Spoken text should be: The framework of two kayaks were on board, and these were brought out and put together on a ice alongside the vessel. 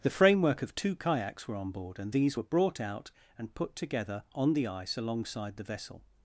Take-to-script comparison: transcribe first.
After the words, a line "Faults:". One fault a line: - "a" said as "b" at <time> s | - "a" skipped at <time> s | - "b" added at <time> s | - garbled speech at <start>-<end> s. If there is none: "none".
The framework of two kayaks were on board, and these were brought out and put together on the ice alongside the vessel.
Faults:
- "a" said as "the" at 4.5 s